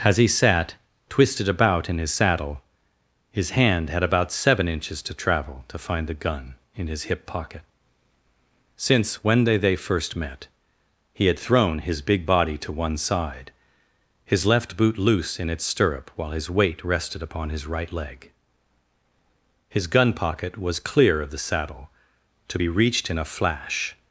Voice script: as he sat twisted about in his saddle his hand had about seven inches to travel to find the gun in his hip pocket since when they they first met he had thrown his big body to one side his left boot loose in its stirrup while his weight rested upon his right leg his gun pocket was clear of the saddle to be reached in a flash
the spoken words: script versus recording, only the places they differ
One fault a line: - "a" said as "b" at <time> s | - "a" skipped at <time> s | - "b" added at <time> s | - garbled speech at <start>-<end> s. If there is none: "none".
none